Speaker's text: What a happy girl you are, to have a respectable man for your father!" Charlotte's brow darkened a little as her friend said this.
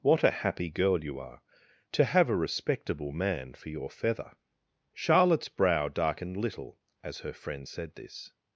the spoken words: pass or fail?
fail